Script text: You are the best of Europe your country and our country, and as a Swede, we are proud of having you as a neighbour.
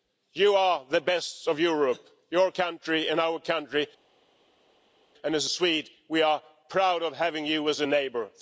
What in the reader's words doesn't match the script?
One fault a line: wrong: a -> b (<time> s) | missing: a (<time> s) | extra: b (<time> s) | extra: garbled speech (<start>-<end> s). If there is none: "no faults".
no faults